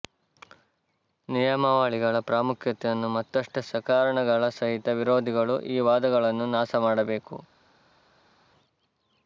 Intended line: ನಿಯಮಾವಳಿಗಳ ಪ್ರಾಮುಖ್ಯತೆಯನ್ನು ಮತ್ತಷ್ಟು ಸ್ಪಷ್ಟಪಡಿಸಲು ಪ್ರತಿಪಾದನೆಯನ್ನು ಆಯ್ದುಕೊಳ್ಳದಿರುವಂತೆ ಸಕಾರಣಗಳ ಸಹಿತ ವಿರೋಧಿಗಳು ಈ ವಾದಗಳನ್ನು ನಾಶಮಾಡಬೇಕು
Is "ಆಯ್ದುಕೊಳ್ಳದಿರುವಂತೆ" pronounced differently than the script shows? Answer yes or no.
yes